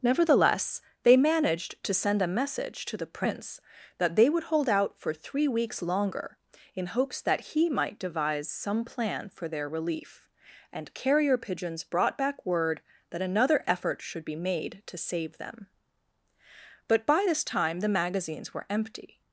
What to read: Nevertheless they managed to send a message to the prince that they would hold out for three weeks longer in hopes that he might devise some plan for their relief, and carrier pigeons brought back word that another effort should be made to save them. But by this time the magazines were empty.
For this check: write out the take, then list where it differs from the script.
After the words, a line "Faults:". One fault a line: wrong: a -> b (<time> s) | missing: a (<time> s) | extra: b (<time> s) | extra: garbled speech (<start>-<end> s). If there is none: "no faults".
Nevertheless they managed to send a message to the prince that they would hold out for three weeks longer in hopes that he might devise some plan for their relief, and carrier pigeons brought back word that another effort should be made to save them. But by this time the magazines were empty.
Faults:
no faults